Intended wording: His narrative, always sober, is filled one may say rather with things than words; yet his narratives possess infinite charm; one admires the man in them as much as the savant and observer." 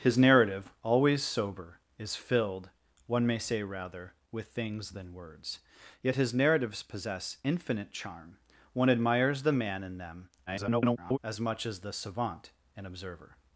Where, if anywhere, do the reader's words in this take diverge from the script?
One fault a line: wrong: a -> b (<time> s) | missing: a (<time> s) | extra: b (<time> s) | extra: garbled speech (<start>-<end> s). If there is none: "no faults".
extra: garbled speech (10.5-11.2 s)